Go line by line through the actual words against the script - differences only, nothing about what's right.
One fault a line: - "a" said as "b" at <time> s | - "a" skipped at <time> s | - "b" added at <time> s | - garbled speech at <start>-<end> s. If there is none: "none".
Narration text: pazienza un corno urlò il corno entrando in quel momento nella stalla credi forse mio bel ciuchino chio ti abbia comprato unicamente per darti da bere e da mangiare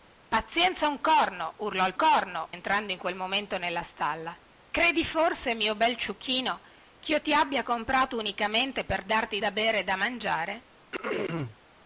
none